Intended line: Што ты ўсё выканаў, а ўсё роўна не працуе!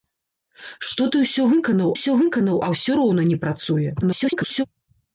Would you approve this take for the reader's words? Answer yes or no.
no